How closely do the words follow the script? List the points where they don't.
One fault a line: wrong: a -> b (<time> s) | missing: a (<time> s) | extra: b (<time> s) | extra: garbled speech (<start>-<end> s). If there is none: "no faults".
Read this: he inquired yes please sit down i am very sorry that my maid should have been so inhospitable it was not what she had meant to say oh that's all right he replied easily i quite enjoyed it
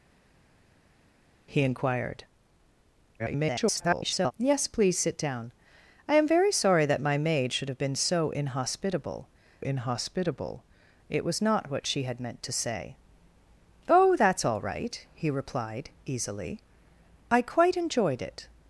extra: garbled speech (3.2-4.3 s)
extra: inhospitable (9.6 s)